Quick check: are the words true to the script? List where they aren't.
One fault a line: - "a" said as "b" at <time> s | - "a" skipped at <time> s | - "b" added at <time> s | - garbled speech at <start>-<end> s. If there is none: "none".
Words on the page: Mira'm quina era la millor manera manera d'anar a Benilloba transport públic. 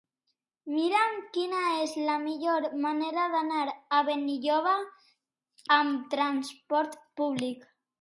- "era" said as "és" at 1.8 s
- "manera" skipped at 3.3 s
- "amb" added at 5.8 s